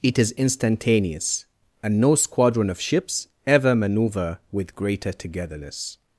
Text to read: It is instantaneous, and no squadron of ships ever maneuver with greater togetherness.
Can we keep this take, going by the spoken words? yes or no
yes